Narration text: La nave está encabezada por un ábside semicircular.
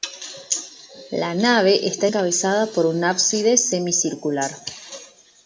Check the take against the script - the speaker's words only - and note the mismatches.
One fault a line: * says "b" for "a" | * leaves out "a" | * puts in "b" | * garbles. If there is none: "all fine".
all fine